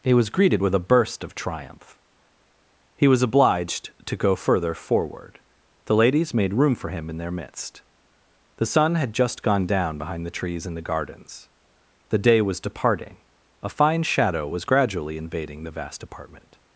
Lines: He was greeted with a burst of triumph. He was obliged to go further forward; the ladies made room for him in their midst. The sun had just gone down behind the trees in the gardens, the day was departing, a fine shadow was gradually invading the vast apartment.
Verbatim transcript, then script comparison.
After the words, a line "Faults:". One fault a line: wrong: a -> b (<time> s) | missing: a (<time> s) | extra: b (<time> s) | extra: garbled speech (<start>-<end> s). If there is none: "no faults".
He was greeted with a burst of triumph. He was obliged to go further forward; the ladies made room for him in their midst. The sun had just gone down behind the trees in the gardens, the day was departing, a fine shadow was gradually invading the vast apartment.
Faults:
no faults